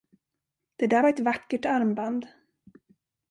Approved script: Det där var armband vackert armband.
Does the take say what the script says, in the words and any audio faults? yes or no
no